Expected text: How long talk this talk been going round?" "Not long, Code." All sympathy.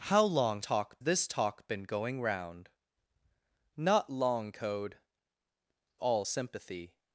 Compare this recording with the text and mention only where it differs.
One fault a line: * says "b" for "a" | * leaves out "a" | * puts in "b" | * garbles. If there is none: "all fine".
all fine